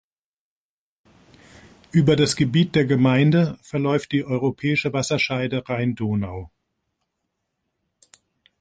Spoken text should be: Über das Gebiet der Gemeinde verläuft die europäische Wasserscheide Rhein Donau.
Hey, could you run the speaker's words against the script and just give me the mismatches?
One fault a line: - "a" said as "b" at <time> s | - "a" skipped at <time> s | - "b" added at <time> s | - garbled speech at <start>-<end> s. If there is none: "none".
none